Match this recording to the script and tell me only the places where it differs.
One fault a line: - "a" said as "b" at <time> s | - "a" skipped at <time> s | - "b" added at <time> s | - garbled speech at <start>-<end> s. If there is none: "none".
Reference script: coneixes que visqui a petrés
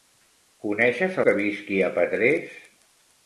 none